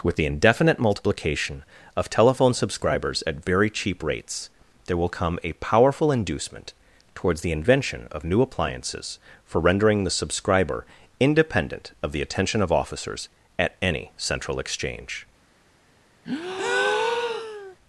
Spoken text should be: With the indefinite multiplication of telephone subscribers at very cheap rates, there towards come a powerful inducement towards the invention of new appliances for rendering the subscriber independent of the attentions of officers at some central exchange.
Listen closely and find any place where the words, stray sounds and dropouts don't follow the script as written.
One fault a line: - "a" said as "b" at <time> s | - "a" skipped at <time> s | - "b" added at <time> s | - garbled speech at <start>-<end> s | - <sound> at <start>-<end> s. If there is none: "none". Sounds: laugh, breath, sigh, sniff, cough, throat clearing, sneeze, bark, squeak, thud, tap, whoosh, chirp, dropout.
- "towards" said as "will" at 5.0 s
- "attentions" said as "attention" at 12.2 s
- "some" said as "any" at 13.8 s
- breath at 16.2-17.8 s